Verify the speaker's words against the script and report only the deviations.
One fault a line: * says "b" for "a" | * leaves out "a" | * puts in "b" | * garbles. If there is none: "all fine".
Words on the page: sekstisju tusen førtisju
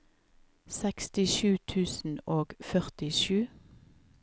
* puts in "og"